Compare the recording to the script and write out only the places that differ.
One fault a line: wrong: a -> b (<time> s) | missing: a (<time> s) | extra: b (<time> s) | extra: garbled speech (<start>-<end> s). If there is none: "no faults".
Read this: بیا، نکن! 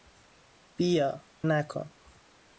no faults